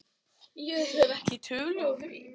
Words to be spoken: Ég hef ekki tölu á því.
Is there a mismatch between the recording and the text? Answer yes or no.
no